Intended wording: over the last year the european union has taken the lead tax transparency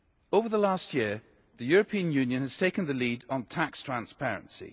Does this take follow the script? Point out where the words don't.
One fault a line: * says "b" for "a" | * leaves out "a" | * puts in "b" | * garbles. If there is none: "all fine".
* puts in "on"